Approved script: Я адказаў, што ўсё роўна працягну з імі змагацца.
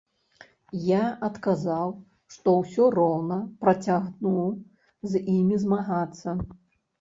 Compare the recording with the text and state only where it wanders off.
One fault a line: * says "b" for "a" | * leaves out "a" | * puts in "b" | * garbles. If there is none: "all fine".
all fine